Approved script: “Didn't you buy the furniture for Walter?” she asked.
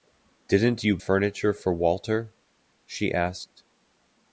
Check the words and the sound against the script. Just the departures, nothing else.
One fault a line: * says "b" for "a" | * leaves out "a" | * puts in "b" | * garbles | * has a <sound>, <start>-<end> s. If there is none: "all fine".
* leaves out "buy the"